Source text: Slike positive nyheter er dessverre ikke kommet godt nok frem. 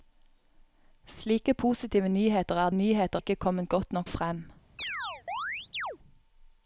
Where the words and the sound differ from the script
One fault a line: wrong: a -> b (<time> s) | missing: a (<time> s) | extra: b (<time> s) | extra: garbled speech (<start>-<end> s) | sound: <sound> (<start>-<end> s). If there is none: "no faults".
wrong: dessverre -> nyheter (2.7 s)
sound: chirp (4.8-6.0 s)